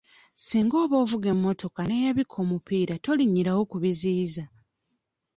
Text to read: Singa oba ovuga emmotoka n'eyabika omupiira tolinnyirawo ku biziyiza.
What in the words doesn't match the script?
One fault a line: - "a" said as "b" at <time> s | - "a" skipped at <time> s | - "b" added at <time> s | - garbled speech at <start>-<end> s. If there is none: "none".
none